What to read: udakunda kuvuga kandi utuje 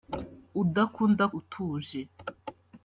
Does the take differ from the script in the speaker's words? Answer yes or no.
yes